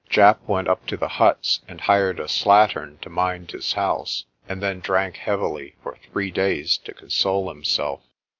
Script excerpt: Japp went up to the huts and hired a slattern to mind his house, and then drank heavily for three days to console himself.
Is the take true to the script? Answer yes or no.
yes